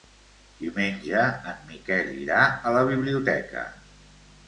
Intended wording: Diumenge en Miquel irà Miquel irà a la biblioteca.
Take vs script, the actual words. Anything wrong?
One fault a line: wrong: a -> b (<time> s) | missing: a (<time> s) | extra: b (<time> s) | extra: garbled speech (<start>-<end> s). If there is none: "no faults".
missing: Miquel irà (2.4 s)